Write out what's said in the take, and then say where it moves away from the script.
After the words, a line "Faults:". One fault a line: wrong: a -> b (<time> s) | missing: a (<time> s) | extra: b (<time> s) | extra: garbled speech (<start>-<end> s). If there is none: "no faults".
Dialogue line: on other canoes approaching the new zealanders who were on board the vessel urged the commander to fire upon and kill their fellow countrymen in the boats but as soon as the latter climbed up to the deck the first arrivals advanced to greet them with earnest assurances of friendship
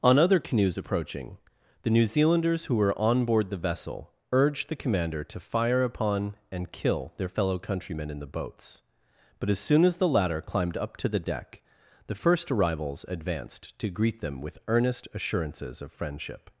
on other canoes approaching the new zealanders who were on board the vessel urged the commander to fire upon and kill their fellow countrymen in the boats but as soon as the latter climbed up to the deck the first arrivals advanced to greet them with earnest assurances of friendship
Faults:
no faults